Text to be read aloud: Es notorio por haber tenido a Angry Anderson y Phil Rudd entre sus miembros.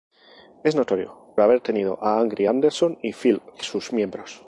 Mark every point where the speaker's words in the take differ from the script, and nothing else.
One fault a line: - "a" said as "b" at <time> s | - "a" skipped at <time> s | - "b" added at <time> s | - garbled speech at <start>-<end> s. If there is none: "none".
- "por" skipped at 1.4 s
- "Rudd entre" skipped at 3.4 s